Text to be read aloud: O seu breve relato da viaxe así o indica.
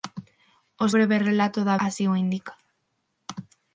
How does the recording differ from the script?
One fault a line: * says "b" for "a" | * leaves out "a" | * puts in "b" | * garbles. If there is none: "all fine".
* leaves out "seu"
* leaves out "viaxe"